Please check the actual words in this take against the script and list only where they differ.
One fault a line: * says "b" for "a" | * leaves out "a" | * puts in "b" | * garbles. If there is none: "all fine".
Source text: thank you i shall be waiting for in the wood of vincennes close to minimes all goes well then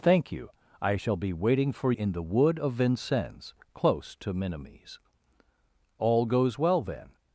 all fine